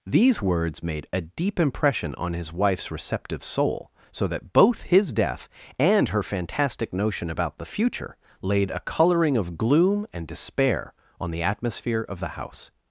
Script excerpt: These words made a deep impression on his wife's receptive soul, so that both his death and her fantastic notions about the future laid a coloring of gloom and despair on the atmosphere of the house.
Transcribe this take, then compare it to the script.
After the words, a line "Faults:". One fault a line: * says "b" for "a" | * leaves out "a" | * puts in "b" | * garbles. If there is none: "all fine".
These words made a deep impression on his wife's receptive soul, so that both his death and her fantastic notion about the future laid a coloring of gloom and despair on the atmosphere of the house.
Faults:
* says "notion" for "notions"